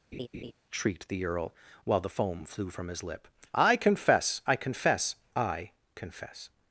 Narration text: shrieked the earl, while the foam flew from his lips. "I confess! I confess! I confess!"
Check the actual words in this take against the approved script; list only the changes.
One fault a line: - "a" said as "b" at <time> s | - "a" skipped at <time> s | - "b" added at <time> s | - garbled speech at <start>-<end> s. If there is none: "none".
- "lips" said as "lip" at 3.0 s